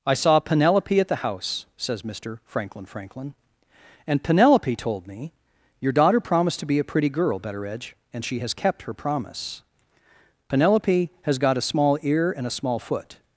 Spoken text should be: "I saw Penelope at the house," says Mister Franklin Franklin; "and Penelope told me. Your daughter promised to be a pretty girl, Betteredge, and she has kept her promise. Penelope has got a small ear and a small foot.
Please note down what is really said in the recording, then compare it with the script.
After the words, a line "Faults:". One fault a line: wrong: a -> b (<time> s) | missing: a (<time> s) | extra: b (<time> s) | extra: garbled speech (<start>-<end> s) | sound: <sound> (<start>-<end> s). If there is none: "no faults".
"I saw Penelope at the house," says Mister Franklin Franklin; "and Penelope told me. Your daughter promised to be a pretty girl, Betteredge, and she has kept her promise. Penelope has got a small ear and a small foot.
Faults:
no faults